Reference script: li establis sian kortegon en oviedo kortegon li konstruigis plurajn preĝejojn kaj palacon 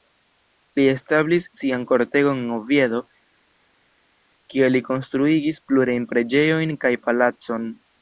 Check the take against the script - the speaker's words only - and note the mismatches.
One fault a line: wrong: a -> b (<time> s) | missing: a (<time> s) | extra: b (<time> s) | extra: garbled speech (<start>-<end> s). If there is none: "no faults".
wrong: kortegon -> kie (4.5 s)